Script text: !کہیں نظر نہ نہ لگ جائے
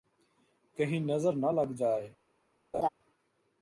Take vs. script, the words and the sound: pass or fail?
fail